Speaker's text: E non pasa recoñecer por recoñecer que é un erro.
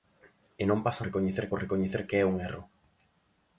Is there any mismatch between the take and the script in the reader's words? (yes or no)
no